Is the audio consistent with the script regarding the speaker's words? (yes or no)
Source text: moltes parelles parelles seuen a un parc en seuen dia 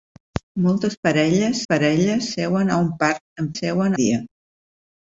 yes